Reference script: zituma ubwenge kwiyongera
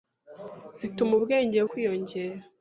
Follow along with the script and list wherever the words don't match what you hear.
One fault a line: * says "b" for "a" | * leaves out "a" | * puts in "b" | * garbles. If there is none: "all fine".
all fine